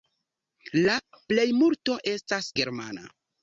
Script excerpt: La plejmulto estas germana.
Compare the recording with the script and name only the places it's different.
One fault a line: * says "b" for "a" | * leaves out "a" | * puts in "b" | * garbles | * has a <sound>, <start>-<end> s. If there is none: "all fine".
all fine